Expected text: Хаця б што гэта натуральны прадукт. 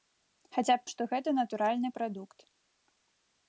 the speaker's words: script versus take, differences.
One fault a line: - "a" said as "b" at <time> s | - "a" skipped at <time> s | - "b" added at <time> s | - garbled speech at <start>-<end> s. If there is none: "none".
none